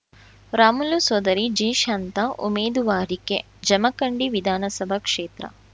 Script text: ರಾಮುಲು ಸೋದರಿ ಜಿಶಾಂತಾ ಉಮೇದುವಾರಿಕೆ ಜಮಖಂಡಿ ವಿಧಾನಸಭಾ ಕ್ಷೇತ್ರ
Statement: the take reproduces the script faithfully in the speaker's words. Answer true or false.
true